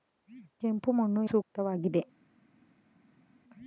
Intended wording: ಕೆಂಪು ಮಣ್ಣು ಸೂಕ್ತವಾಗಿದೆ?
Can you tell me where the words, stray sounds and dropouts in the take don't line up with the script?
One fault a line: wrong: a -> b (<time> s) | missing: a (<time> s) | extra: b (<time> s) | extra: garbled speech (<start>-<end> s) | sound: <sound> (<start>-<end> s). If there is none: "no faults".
no faults